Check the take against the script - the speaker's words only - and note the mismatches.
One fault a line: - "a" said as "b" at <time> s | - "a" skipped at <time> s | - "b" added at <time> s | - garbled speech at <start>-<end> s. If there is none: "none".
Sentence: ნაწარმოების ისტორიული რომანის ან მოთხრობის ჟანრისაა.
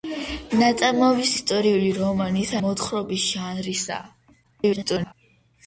- "ან" skipped at 2.5 s
- garbled speech at 4.4-5.1 s